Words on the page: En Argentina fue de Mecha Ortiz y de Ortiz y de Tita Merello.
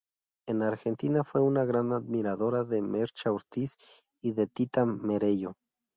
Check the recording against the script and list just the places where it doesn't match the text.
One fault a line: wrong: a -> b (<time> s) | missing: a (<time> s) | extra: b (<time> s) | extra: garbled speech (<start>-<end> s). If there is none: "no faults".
wrong: de Mecha Ortiz y de -> una gran admiradora de Mecha (1.4 s)